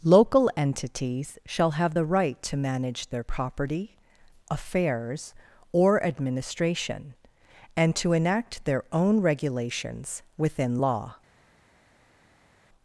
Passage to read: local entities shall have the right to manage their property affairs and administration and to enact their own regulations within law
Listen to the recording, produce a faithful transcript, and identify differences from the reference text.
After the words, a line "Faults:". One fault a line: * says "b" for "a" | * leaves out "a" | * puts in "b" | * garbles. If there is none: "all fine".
local entities shall have the right to manage their property affairs or administration and to enact their own regulations within law
Faults:
* says "or" for "and"